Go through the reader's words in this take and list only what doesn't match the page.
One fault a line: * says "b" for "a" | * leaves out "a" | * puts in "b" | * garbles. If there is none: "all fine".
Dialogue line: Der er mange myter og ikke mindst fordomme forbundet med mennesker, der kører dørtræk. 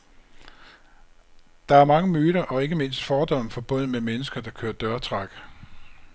all fine